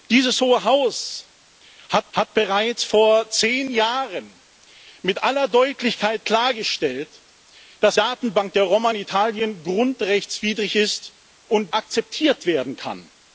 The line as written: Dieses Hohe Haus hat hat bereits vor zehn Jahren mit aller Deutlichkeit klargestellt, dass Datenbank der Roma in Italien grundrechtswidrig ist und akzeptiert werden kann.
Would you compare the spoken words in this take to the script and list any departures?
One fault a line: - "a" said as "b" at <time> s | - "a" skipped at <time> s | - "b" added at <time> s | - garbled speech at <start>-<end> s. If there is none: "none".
none